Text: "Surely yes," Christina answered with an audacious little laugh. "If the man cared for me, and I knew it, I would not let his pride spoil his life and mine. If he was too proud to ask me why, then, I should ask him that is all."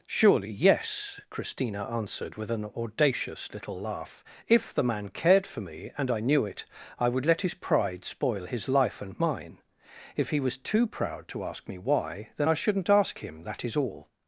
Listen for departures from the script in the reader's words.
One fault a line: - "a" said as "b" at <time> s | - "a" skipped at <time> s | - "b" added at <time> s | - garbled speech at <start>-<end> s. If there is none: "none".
- "not" skipped at 7.2 s
- "should" said as "shouldn't" at 12.5 s